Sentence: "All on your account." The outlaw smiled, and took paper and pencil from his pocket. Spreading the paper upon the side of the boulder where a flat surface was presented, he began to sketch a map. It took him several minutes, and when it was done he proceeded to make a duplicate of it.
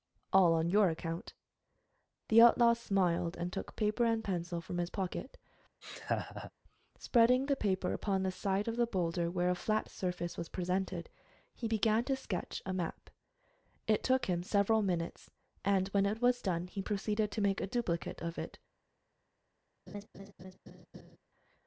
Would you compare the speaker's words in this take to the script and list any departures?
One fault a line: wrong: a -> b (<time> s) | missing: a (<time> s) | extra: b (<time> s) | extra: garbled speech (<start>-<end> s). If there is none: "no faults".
no faults